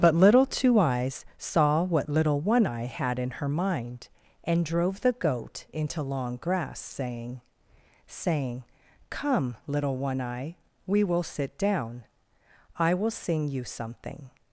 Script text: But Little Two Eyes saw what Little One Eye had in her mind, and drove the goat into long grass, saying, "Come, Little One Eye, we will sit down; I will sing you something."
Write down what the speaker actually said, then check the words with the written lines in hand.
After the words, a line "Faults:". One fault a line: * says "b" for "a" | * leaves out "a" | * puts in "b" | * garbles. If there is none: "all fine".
But Little Two Eyes saw what Little One Eye had in her mind, and drove the goat into long grass, saying saying, "Come, Little One Eye, we will sit down; I will sing you something."
Faults:
* puts in "saying"